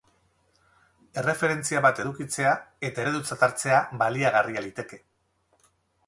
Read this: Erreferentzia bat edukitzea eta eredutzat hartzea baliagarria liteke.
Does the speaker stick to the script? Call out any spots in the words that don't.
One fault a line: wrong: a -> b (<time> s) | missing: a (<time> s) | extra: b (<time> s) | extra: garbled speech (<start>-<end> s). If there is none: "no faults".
no faults